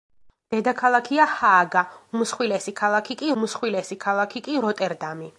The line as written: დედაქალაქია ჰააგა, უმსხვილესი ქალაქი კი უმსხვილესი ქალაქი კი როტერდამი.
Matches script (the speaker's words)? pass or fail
pass